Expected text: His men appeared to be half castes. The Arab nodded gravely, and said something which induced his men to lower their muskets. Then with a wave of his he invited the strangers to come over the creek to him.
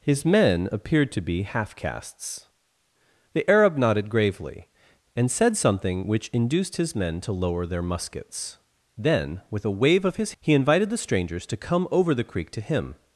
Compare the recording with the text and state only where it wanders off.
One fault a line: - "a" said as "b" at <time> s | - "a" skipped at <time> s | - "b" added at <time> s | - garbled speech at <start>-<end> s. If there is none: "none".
none